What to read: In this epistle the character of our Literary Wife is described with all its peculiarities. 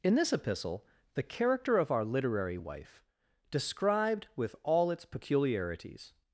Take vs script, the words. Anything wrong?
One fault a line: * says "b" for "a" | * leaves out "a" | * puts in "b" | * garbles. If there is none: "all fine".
* leaves out "is"